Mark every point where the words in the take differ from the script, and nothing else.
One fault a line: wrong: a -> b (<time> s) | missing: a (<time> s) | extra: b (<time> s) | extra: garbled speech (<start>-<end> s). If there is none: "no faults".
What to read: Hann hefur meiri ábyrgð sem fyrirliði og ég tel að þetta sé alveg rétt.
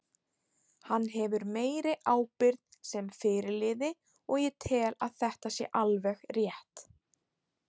no faults